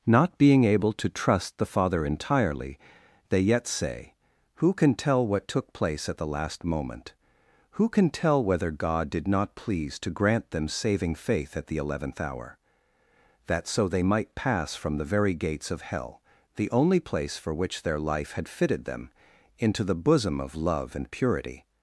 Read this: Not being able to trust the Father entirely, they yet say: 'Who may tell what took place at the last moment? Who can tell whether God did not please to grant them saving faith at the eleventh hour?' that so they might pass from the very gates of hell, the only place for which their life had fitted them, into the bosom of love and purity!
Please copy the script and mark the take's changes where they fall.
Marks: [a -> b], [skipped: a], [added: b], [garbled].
Not being able to trust the Father entirely, they yet say: 'Who [may -> can] tell what took place at the last moment? Who can tell whether God did not please to grant them saving faith at the eleventh hour?' that so they might pass from the very gates of hell, the only place for which their life had fitted them, into the bosom of love and purity!